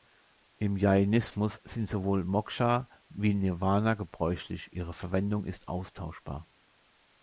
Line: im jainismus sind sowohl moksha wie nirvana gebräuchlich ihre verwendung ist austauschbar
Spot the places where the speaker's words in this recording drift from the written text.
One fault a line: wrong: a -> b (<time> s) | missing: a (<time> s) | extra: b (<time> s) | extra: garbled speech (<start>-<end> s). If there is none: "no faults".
no faults